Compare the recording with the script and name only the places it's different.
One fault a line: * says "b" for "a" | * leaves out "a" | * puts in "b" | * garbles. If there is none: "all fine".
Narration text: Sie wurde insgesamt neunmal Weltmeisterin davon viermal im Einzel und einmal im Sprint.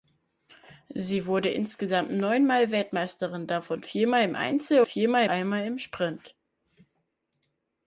* says "viermal" for "und"